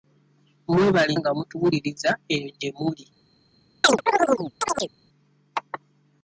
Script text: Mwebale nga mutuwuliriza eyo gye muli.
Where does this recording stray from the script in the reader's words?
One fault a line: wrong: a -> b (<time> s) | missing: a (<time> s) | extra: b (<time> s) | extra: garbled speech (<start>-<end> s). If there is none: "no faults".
no faults